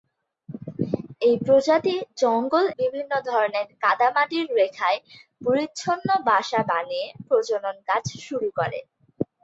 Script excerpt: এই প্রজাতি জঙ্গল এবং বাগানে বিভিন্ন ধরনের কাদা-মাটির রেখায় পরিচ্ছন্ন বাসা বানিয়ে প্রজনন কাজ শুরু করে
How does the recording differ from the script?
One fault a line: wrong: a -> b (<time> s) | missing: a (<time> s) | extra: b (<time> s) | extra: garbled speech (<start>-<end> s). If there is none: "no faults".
missing: এবং বাগানে (2.6 s)